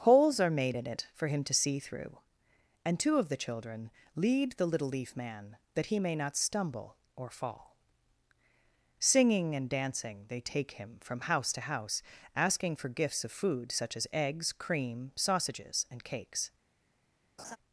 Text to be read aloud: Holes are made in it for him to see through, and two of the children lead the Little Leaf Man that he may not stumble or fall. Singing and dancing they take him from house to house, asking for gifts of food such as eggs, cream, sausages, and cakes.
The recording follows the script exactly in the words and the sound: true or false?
false